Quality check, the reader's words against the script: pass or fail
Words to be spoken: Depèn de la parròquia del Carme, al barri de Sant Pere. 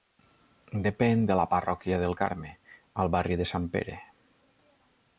pass